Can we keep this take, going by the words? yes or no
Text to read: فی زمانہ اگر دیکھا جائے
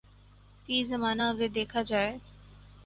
yes